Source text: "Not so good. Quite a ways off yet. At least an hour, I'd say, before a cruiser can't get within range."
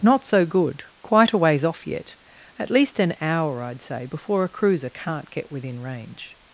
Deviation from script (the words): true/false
false